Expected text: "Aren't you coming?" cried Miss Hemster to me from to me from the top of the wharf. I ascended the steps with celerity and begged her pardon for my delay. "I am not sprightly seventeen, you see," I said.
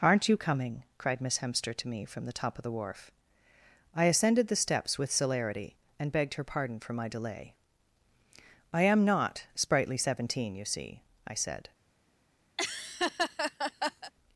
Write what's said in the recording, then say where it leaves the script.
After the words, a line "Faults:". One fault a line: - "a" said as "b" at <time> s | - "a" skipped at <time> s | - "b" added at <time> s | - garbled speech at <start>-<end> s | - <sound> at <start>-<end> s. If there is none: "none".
"Aren't you coming?" cried Miss Hemster to me from the top of the wharf. I ascended the steps with celerity and begged her pardon for my delay. "I am not sprightly seventeen, you see," I said.
Faults:
- "to me from" skipped at 2.2 s
- laugh at 12.6-14.1 s